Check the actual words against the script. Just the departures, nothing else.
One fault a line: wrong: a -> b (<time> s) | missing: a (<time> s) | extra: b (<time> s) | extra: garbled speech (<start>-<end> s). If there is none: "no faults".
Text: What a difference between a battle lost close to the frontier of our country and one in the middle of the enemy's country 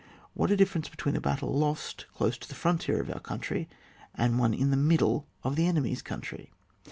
no faults